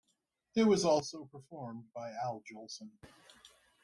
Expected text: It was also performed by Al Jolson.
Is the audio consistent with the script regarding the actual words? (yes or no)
yes